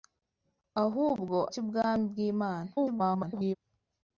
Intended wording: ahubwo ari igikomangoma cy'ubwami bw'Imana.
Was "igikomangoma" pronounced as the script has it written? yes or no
no